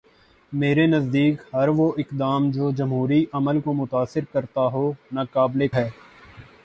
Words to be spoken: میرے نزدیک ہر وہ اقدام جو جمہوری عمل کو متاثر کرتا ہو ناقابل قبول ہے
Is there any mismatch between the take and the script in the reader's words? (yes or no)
yes